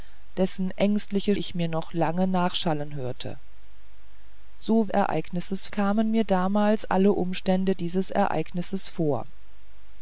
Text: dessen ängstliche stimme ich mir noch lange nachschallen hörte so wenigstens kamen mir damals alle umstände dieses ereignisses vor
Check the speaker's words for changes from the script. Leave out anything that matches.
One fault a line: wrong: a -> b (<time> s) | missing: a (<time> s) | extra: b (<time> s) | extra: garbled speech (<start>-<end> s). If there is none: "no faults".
missing: stimme (1.4 s)
wrong: wenigstens -> ereignisses (4.9 s)